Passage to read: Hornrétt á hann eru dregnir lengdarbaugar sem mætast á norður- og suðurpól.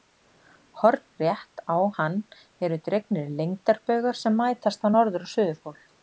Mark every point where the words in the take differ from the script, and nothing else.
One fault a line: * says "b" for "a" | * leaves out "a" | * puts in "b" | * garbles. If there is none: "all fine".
all fine